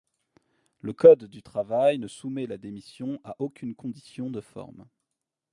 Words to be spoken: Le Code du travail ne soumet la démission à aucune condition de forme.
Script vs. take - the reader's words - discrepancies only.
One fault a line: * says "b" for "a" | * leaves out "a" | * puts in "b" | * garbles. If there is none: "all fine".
all fine